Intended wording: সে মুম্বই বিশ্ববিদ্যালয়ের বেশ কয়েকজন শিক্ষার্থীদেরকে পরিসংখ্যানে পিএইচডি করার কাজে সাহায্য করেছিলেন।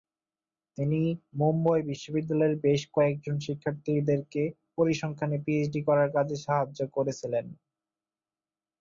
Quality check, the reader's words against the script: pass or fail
fail